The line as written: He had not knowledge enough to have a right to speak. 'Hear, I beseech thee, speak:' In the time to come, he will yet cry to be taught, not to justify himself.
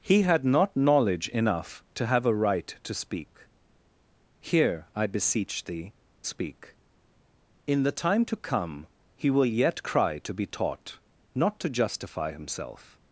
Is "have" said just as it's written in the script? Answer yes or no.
yes